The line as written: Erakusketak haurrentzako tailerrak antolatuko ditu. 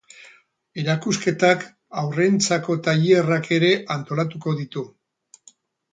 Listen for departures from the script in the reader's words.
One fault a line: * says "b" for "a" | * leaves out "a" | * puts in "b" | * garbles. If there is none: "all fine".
* puts in "ere"